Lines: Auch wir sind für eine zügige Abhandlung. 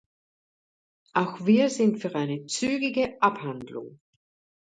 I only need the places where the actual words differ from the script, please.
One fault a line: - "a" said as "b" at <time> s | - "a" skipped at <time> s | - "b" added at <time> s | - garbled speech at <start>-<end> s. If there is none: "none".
none